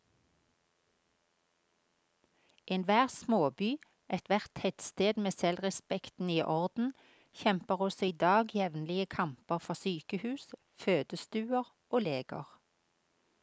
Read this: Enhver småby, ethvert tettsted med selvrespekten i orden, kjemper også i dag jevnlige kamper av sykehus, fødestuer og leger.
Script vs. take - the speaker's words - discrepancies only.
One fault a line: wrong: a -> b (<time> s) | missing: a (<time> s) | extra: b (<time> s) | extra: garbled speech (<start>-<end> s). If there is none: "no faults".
wrong: av -> for (9.6 s)